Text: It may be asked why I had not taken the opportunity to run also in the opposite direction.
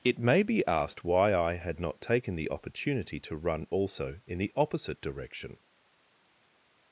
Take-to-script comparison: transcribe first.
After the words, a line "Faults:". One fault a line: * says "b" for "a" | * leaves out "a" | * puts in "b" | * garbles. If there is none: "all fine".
It may be asked why I had not taken the opportunity to run also in the opposite direction.
Faults:
all fine